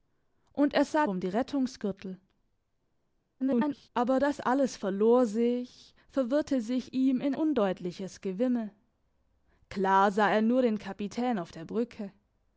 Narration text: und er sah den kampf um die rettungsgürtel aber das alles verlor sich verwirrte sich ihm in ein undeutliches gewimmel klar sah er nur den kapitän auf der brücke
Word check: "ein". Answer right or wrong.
wrong